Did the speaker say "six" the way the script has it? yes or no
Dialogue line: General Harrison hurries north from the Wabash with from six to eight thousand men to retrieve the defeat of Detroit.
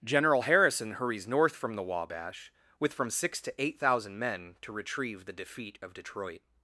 yes